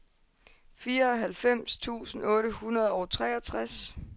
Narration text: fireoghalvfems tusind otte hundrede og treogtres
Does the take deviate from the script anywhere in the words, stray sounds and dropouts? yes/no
no